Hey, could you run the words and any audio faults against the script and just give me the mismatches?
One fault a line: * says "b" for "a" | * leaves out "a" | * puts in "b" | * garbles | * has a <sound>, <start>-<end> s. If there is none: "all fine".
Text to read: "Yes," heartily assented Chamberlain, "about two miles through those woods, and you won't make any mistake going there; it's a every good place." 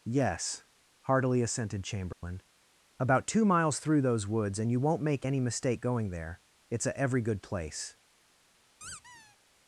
* has a dropout, 2.1-2.2 s
* has a squeak, 8.8-9.4 s